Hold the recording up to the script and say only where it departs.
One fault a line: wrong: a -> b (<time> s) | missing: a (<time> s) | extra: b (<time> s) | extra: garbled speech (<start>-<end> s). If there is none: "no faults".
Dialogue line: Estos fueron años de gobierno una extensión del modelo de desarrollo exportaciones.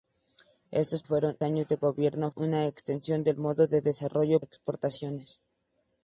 no faults